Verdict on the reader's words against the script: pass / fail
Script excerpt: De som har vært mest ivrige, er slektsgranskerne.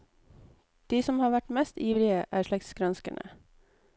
pass